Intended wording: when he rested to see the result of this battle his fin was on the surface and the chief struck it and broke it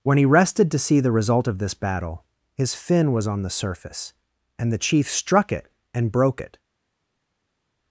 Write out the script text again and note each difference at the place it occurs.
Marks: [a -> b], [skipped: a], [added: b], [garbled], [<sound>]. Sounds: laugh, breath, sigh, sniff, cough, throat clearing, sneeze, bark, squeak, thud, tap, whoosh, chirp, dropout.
when he rested to see the result of this battle his fin was on the surface and the chief struck it and broke it